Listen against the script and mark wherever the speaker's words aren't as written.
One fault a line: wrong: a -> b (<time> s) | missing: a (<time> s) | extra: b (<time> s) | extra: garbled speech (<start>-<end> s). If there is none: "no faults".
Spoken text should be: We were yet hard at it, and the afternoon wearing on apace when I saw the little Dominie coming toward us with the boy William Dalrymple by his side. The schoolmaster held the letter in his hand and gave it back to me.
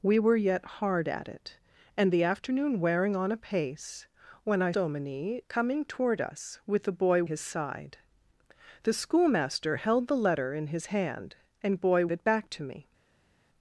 missing: saw the little (4.7 s)
missing: William Dalrymple by (7.2 s)
wrong: gave -> boy (11.7 s)